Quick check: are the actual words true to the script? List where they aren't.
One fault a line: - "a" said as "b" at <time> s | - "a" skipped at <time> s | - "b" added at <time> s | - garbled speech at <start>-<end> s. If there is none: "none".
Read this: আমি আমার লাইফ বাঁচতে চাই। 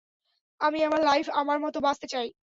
- "আমার মতো" added at 1.4 s